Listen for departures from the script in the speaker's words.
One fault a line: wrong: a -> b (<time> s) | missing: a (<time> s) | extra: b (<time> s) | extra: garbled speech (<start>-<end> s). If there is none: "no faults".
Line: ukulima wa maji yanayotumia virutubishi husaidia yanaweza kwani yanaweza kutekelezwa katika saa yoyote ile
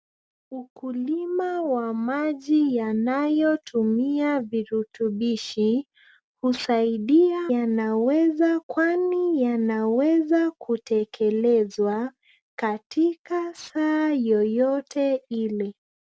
no faults